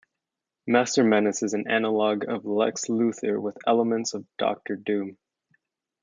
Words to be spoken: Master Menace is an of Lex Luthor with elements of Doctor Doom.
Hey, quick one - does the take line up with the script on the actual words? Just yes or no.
no